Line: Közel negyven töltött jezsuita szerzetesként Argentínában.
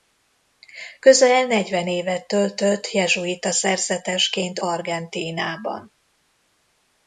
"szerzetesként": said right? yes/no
yes